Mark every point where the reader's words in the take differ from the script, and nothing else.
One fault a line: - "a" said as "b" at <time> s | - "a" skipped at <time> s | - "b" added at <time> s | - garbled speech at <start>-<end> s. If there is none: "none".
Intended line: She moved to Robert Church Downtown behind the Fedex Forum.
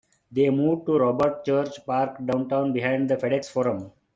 - "She" said as "They" at 0.3 s
- "Park" added at 1.9 s